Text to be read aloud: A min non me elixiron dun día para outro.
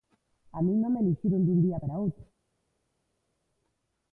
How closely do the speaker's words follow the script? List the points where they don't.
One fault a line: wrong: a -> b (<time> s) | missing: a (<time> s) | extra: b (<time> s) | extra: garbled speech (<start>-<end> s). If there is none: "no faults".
no faults